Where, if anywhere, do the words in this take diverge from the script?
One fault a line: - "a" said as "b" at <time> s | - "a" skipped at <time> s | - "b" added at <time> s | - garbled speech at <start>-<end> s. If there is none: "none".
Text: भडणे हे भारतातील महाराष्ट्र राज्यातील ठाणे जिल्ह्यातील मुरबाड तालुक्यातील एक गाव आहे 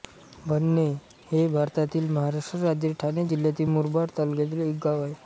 none